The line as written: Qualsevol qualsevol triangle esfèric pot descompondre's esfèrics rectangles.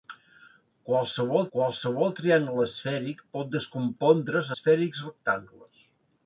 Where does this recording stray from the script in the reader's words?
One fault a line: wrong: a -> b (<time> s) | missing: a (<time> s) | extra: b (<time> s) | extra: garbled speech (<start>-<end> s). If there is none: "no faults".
no faults